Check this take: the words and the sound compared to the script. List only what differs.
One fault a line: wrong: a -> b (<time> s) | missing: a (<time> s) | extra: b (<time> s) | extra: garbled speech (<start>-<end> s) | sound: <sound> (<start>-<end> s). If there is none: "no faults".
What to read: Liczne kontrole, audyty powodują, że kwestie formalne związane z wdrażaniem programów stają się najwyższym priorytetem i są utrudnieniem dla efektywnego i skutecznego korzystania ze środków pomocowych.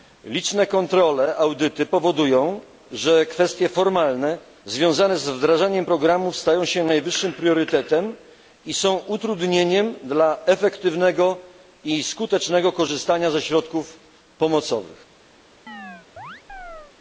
sound: chirp (15.7-16.9 s)